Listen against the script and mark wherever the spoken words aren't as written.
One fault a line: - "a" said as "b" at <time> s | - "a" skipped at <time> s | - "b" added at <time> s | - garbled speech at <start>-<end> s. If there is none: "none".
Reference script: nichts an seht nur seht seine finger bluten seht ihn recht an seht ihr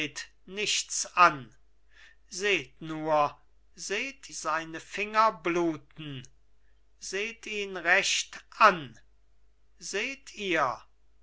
none